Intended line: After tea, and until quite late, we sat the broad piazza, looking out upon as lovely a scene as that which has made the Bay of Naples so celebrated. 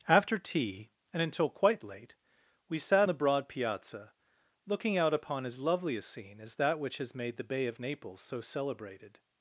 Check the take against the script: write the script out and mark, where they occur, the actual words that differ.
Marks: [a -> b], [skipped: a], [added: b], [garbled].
After tea, and until quite late, we sat the broad piazza, looking out upon as lovely a scene as that which has made the Bay of Naples so celebrated.